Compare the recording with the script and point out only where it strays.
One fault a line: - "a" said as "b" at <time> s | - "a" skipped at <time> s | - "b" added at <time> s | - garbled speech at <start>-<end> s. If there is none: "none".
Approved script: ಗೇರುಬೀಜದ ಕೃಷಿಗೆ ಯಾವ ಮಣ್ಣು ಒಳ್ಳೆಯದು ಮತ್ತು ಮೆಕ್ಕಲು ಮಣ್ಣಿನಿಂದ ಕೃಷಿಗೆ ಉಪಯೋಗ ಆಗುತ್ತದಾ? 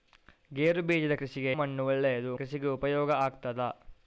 - "ಯಾವ" skipped at 1.5 s
- "ಮತ್ತು ಮೆಕ್ಕಲು ಮಣ್ಣಿನಿಂದ" skipped at 2.3 s